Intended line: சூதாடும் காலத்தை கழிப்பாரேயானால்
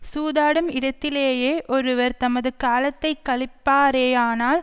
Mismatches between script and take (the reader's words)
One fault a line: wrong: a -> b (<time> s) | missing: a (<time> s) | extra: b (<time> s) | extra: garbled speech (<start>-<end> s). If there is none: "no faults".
extra: இடத்திலேயே ஒருவர் தமது (0.7 s)